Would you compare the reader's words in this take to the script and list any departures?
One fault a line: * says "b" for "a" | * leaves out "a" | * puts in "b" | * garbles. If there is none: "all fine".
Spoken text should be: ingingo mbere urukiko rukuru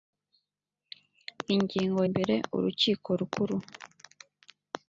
all fine